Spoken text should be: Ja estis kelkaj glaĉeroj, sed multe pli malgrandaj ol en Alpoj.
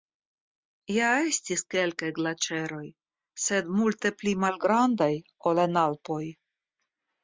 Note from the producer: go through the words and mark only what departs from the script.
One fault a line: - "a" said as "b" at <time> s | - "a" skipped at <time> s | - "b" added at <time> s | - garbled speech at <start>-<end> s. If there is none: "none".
none